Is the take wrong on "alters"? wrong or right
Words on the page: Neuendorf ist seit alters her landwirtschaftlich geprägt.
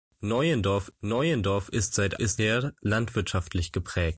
wrong